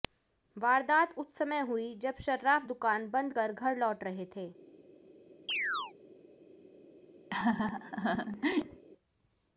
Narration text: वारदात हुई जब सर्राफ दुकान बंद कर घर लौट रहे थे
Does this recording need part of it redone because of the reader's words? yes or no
yes